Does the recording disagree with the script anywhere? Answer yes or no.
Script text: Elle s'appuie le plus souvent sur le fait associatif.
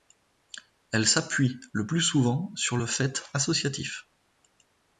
no